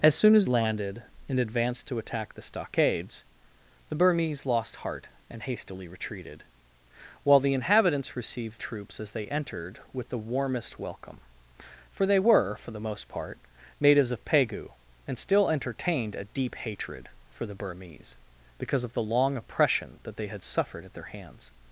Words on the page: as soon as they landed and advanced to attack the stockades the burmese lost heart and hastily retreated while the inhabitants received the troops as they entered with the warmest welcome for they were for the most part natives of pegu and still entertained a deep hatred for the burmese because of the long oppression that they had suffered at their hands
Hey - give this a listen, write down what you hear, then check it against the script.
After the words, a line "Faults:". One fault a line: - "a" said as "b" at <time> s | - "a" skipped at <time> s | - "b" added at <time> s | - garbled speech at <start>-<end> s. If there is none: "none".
as soon as landed and advanced to attack the stockades the burmese lost heart and hastily retreated while the inhabitants received troops as they entered with the warmest welcome for they were for the most part natives of pegu and still entertained a deep hatred for the burmese because of the long oppression that they had suffered at their hands
Faults:
- "they" skipped at 0.5 s
- "the" skipped at 8.6 s